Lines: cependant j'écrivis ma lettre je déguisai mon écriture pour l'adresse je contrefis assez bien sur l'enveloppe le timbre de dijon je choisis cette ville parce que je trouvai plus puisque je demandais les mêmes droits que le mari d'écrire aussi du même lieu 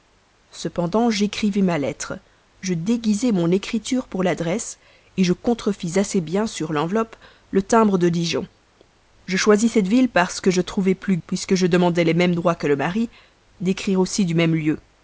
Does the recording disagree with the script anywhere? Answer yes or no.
no